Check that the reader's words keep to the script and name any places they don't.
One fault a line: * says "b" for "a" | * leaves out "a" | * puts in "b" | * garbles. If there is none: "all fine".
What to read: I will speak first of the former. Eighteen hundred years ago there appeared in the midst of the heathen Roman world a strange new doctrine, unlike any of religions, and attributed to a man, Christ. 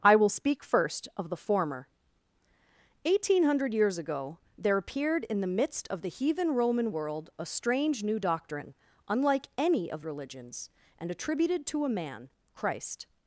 all fine